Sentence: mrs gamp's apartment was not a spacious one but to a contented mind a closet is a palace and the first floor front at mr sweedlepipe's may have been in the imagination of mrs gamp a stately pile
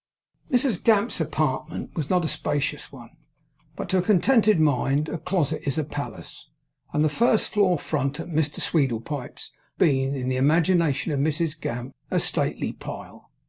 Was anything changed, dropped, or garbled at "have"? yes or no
yes